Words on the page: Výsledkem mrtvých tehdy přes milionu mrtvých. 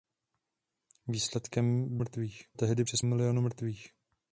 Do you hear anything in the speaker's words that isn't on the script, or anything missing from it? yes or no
no